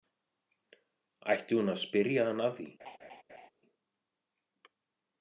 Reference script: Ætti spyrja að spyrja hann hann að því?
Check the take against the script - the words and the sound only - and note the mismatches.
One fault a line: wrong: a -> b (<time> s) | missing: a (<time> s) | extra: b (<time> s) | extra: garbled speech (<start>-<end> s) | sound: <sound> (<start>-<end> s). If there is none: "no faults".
wrong: spyrja -> hún (1.6 s)
missing: hann (2.5 s)
sound: laugh (2.8-3.5 s)